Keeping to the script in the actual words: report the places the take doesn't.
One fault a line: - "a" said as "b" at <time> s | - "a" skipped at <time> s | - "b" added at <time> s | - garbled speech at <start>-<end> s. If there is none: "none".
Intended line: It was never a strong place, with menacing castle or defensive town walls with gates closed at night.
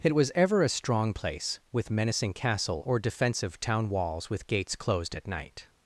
- "never" said as "ever" at 0.3 s